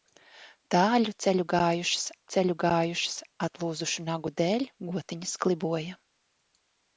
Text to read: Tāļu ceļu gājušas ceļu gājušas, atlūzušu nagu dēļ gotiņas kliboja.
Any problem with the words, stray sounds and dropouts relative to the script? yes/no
no